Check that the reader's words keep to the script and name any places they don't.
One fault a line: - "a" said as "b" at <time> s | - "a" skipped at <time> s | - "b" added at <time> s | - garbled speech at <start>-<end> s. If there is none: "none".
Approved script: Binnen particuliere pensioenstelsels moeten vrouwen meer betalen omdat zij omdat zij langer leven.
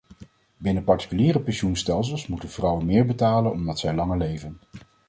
- "omdat zij" skipped at 3.9 s